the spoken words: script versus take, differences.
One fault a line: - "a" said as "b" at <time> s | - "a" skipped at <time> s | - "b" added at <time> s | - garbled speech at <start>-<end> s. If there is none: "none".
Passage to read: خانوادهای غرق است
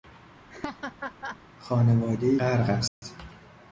none